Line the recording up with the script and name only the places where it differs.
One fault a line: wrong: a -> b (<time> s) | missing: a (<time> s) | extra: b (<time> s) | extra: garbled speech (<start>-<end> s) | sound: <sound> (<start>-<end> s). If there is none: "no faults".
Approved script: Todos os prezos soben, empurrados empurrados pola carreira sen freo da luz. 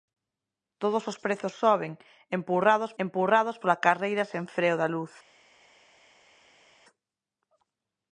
no faults